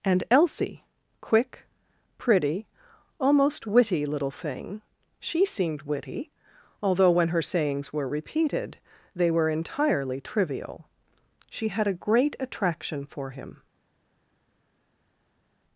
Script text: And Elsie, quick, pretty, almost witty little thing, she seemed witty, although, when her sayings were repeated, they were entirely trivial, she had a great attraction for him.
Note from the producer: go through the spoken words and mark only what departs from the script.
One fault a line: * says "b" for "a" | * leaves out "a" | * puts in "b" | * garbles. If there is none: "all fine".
all fine